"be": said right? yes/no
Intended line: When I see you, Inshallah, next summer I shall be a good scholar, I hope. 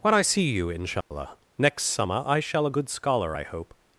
no